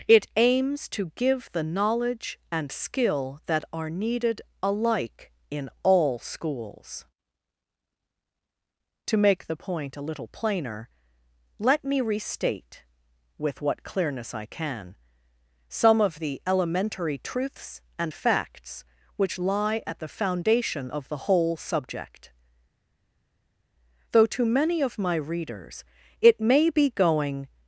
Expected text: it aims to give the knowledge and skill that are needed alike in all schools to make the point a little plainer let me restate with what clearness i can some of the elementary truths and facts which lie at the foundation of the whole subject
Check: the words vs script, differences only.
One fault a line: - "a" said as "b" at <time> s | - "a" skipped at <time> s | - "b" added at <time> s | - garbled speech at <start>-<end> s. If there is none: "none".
- "though to many of my readers it may be going" added at 24.1 s